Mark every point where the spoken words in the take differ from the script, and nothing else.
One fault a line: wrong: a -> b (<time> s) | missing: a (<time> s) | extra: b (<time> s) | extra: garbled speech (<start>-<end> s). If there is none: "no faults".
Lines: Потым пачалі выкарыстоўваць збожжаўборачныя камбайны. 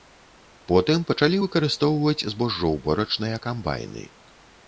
no faults